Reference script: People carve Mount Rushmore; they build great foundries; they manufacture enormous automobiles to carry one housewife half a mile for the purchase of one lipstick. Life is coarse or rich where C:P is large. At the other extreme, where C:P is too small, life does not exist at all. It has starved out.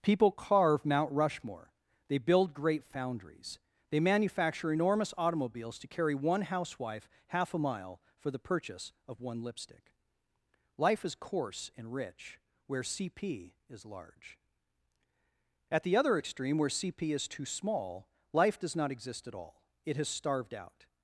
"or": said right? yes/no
no